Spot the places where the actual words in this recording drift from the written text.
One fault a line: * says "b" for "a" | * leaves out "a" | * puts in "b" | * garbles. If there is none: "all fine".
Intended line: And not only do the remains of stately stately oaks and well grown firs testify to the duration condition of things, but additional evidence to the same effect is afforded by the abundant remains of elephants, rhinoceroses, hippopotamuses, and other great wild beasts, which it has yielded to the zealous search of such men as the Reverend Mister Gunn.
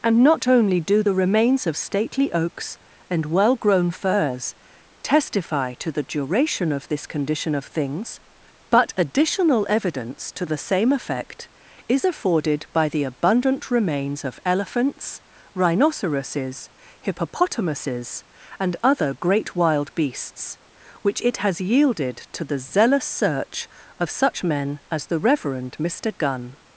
* leaves out "stately"
* puts in "of this"